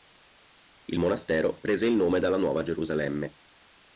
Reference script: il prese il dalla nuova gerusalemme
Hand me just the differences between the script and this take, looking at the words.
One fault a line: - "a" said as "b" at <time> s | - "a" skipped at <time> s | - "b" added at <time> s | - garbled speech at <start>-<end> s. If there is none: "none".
- "monastero" added at 1.0 s
- "nome" added at 1.9 s